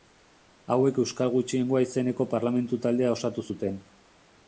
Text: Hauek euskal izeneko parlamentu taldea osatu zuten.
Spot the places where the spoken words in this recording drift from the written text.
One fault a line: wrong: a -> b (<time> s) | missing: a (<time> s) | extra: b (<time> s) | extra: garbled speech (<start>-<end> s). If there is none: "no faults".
extra: gutxiengoa (1.4 s)